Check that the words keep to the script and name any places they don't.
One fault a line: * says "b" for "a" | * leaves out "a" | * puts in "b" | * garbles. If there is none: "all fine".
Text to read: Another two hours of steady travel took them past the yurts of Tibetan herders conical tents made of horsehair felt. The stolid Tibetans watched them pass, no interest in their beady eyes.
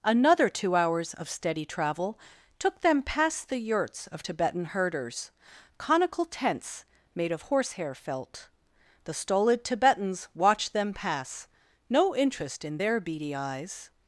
all fine